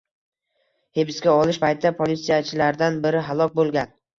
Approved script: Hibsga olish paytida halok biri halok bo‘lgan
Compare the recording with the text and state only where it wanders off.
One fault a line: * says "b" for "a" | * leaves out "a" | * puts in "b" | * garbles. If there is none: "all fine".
* says "politsiyachilardan" for "halok"